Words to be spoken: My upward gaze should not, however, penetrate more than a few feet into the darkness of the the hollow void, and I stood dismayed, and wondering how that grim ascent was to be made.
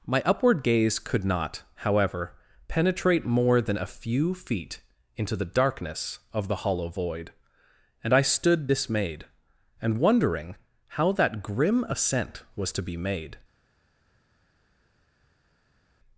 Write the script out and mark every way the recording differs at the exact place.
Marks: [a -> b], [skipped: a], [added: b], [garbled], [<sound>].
My upward gaze [should -> could] not, however, penetrate more than a few feet into the darkness of the [skipped: the] hollow void, and I stood dismayed, and wondering how that grim ascent was to be made.